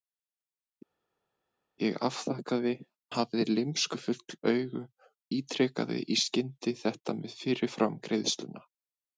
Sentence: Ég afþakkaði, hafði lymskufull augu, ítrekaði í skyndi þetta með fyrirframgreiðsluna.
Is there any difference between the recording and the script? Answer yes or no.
no